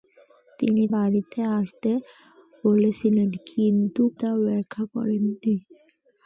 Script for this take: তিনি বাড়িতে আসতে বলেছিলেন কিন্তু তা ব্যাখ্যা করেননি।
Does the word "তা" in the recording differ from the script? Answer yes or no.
no